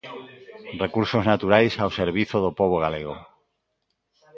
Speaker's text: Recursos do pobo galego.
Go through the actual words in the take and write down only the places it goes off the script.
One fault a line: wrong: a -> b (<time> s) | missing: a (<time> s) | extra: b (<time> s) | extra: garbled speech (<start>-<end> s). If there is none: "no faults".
extra: naturais ao servizo (1.3 s)